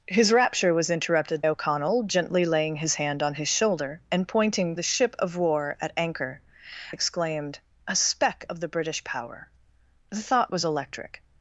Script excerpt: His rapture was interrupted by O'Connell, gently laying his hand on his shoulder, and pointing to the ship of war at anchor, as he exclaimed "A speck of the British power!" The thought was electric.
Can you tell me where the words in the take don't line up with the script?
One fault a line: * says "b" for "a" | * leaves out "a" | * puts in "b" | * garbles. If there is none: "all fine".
* leaves out "by"
* leaves out "to"
* leaves out "as he"